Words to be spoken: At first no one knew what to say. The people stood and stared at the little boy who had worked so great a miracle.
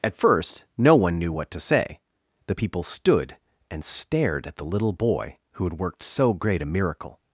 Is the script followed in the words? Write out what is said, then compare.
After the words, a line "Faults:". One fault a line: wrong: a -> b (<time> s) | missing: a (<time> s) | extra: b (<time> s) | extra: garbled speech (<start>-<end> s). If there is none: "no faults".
At first no one knew what to say. The people stood and stared at the little boy who had worked so great a miracle.
Faults:
no faults